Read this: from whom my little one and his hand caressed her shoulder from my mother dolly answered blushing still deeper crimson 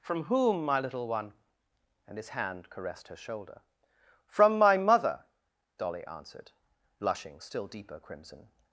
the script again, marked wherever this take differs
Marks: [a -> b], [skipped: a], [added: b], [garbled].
from whom my little one and his hand caressed her shoulder from my mother dolly answered blushing still deeper crimson